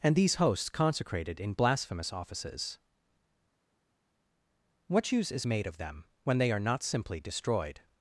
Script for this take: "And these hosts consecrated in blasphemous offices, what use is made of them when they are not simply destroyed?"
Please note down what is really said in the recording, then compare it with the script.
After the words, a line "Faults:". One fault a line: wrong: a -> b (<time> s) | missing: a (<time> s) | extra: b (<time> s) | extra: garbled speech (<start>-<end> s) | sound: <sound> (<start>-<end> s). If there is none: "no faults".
"And these hosts consecrated in blasphemous offices, what use is made of them when they are not simply destroyed?"
Faults:
no faults